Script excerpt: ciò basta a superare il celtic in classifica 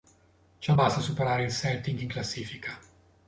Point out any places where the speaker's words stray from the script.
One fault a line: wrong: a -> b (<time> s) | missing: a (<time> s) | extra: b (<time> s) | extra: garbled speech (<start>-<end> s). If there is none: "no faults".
no faults